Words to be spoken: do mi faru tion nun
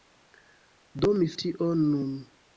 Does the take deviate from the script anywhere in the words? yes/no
yes